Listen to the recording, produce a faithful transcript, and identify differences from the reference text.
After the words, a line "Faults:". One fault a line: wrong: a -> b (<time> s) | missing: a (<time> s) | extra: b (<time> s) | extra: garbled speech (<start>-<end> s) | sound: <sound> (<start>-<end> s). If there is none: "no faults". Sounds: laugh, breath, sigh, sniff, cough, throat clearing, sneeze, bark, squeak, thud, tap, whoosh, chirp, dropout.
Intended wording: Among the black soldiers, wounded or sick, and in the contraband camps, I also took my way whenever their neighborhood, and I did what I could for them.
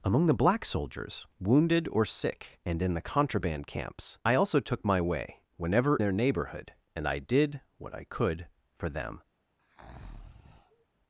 Among the black soldiers, wounded or sick, and in the contraband camps, I also took my way whenever their neighborhood, and I did what I could for them.
Faults:
sound: breath (9.6-10.9 s)